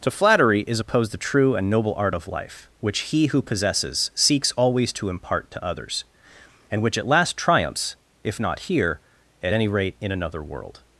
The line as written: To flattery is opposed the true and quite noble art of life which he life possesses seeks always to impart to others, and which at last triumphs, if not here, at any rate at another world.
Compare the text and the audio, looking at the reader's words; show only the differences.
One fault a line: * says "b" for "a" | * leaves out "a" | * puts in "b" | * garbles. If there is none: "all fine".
* leaves out "quite"
* says "who" for "life"
* says "in" for "at"